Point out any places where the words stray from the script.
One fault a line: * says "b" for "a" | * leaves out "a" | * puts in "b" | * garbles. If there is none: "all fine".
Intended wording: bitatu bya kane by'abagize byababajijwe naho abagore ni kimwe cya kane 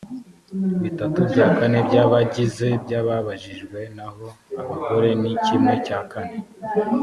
all fine